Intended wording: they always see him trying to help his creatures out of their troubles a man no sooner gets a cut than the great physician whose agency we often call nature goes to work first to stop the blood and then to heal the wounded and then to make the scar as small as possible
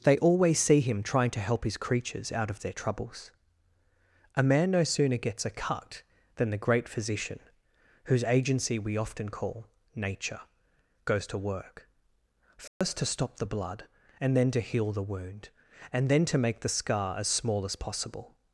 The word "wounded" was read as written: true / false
false